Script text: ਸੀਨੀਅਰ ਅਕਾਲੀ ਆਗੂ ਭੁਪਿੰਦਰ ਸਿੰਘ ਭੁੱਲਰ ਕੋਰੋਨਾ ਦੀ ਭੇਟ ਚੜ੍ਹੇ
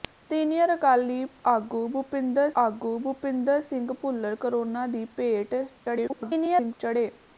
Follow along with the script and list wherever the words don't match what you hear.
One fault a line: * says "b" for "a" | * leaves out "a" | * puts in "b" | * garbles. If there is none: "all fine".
* puts in "ਆਗੂ ਭੁਪਿੰਦਰ"
* garbles